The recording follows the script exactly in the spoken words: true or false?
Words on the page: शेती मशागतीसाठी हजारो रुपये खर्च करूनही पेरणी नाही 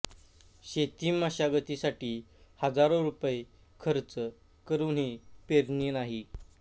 true